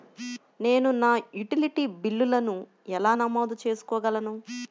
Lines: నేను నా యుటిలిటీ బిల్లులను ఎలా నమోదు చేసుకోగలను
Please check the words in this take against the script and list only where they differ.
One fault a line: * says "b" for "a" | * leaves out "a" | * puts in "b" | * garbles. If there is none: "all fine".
all fine